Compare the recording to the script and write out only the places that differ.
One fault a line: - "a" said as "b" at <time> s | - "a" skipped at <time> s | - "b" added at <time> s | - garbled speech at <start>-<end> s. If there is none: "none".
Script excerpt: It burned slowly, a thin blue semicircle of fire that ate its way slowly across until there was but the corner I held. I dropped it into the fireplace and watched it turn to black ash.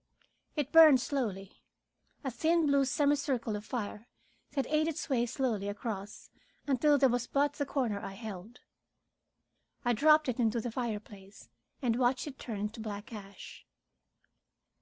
none